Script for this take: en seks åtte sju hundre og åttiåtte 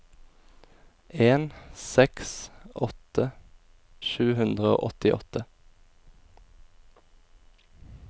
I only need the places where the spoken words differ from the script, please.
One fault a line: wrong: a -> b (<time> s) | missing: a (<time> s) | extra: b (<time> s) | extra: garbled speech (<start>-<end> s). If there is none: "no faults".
no faults